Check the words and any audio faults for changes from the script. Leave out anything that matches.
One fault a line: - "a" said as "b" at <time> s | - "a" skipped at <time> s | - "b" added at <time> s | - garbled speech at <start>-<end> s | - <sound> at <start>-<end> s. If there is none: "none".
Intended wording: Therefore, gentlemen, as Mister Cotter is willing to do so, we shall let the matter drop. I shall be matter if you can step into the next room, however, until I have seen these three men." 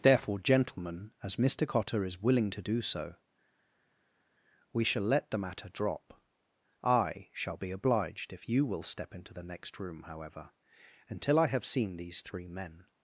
- "matter" said as "obliged" at 7.7 s
- "can" said as "will" at 8.7 s